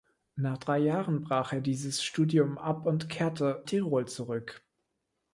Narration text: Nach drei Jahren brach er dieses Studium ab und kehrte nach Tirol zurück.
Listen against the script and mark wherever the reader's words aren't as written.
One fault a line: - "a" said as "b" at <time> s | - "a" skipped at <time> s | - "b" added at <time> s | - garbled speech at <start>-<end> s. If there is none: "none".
- "nach" skipped at 3.6 s